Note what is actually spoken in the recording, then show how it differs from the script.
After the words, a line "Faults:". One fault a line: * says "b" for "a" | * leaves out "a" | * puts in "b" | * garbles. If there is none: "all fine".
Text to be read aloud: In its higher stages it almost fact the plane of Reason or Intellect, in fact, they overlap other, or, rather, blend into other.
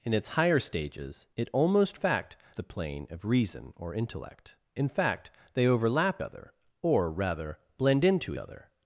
In its higher stages it almost fact the plane of Reason or Intellect, in fact, they overlap other, or, rather, blend into other.
Faults:
all fine